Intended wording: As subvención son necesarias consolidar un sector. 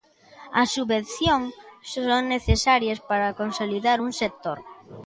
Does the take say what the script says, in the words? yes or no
no